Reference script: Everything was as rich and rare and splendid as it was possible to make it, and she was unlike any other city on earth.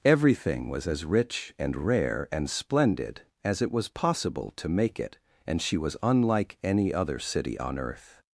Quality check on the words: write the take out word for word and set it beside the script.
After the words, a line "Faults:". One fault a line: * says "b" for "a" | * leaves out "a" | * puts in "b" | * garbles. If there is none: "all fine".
Everything was as rich and rare and splendid as it was possible to make it, and she was unlike any other city on earth.
Faults:
all fine